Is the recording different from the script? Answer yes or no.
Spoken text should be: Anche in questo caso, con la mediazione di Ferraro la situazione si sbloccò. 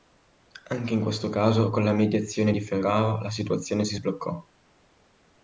no